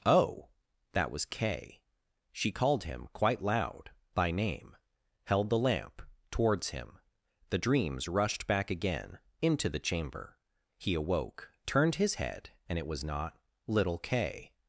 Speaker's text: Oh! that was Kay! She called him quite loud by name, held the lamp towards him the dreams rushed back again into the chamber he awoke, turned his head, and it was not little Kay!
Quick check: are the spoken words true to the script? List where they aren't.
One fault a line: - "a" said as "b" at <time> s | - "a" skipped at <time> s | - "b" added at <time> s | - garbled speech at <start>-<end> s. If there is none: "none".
none